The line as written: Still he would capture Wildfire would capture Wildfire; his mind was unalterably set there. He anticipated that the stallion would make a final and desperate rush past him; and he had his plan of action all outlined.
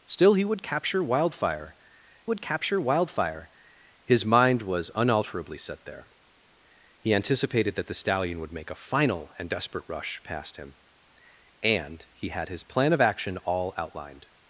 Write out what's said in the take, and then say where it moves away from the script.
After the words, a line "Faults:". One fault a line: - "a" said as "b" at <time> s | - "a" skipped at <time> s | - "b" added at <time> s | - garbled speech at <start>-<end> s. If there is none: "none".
Still he would capture Wildfire would capture Wildfire; his mind was unalterably set there. He anticipated that the stallion would make a final and desperate rush past him; and he had his plan of action all outlined.
Faults:
none